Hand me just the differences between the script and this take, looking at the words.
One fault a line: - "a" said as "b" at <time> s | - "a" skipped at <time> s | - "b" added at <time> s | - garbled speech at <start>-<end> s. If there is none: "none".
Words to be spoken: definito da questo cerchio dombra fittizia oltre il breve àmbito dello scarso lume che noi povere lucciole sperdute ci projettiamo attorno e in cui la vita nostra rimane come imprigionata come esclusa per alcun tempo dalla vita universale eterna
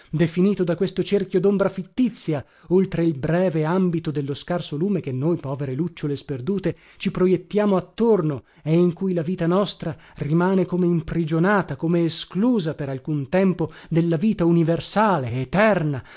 none